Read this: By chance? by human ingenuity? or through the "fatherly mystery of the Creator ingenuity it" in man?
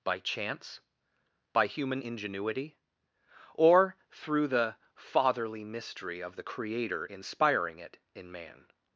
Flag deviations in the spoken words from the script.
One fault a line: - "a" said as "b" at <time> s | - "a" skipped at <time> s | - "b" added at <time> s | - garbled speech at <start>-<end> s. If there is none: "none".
- "ingenuity" said as "inspiring" at 7.0 s